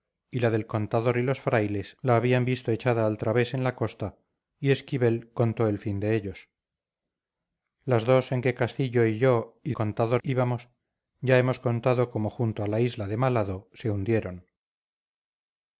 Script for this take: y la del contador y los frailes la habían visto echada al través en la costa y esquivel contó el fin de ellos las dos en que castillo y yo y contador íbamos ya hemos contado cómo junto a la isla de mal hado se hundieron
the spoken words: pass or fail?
pass